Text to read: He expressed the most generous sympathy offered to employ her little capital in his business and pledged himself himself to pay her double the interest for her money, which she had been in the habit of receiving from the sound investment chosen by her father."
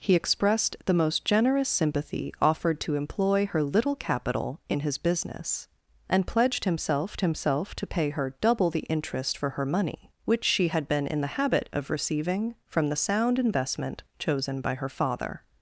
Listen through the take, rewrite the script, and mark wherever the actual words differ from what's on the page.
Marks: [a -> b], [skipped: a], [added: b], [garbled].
He expressed the most generous sympathy offered to employ her little capital in his business and pledged himself himself to pay her double the interest for her money, which she had been in the habit of receiving from the sound investment chosen by her father."